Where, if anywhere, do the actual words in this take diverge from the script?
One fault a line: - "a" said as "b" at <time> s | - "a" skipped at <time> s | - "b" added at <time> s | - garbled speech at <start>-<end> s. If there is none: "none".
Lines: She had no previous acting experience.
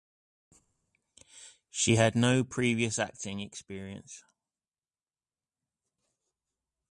none